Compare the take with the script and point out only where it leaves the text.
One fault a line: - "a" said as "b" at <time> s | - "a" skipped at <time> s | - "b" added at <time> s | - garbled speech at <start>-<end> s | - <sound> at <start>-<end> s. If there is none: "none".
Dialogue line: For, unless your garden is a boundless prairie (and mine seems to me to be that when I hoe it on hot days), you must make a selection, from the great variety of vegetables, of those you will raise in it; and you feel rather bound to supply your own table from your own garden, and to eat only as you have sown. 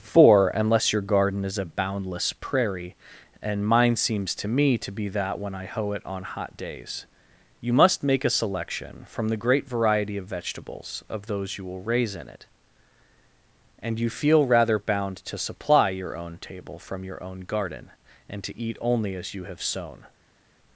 none